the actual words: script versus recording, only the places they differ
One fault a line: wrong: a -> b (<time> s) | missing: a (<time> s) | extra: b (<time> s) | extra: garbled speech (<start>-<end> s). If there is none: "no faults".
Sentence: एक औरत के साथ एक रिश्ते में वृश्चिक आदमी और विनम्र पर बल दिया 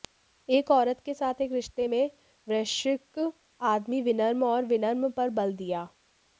extra: विनम्र (4.0 s)